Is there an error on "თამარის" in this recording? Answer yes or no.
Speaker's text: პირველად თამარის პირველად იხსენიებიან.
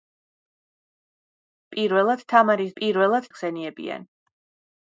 no